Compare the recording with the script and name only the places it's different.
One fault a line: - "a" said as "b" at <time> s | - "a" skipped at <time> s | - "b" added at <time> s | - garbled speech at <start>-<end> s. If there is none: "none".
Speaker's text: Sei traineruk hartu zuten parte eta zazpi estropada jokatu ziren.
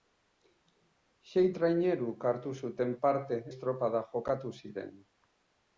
- "eta zazpi" skipped at 3.4 s